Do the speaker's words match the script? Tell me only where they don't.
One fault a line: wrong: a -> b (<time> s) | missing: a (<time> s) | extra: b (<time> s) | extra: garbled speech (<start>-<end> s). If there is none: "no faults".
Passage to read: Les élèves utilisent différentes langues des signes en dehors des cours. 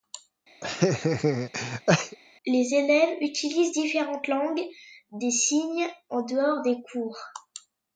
no faults